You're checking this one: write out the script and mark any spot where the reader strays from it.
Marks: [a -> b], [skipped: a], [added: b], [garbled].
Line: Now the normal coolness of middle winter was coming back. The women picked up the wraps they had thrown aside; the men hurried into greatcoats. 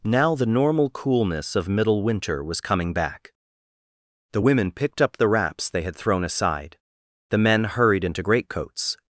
Now the normal coolness of middle winter was coming back. The women picked up the wraps they had thrown aside; the men hurried into greatcoats.